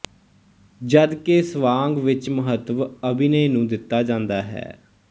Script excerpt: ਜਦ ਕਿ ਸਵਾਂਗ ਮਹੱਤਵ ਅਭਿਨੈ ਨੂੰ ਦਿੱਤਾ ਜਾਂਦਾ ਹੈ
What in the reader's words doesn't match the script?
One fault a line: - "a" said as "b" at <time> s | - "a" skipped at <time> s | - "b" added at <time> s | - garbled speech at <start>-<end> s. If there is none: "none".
- "ਵਿੱਚ" added at 2.0 s